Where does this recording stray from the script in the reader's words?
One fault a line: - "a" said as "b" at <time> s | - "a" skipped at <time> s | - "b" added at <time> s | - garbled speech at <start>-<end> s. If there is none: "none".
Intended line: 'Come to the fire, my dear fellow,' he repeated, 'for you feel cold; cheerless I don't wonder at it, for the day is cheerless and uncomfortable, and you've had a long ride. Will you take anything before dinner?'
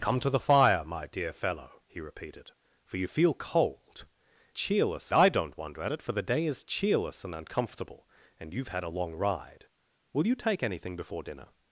none